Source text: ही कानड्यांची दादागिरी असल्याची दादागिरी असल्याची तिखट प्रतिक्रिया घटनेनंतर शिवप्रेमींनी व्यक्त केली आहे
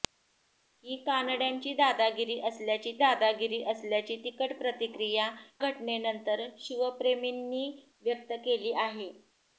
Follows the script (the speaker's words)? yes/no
yes